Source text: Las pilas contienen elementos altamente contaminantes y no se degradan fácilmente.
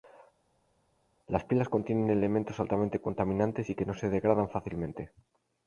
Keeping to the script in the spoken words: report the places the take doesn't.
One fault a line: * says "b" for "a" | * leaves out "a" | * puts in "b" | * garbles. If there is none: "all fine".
* puts in "que"